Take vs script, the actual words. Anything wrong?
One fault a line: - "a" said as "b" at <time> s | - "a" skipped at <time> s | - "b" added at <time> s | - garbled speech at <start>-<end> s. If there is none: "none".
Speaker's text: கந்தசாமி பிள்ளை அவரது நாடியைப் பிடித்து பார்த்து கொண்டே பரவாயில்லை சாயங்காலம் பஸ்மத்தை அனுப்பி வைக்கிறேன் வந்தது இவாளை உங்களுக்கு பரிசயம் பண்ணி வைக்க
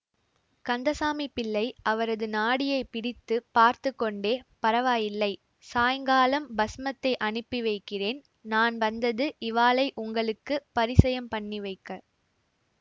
- "நான்" added at 8.4 s